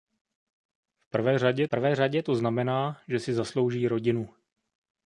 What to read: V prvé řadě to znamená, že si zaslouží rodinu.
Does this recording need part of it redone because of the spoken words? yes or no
yes